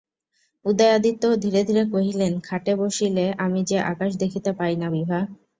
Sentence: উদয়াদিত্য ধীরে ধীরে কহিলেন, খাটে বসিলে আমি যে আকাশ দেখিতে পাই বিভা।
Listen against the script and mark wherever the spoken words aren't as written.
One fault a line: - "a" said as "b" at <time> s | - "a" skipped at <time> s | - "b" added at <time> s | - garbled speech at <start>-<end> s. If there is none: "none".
- "না" added at 4.8 s